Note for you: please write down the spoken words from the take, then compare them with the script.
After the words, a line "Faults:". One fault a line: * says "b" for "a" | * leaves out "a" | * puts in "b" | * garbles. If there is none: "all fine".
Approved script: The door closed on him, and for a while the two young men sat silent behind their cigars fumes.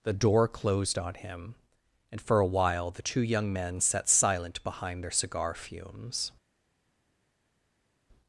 The door closed on him, and for a while the two young men sat silent behind their cigar fumes.
Faults:
* says "cigar" for "cigars"